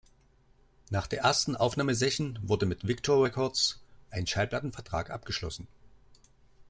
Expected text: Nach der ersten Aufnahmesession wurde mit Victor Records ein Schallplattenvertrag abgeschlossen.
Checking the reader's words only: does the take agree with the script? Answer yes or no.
yes